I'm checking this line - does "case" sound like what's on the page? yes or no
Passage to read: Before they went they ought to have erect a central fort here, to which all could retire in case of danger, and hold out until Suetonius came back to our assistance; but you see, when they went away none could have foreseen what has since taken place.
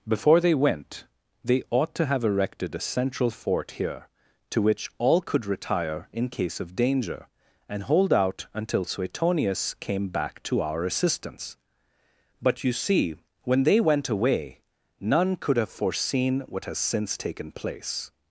yes